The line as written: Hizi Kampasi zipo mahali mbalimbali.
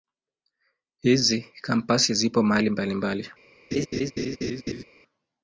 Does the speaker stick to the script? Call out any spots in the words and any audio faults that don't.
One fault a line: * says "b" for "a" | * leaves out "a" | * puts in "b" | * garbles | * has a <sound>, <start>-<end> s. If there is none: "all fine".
* has a laugh, 3.7-4.8 s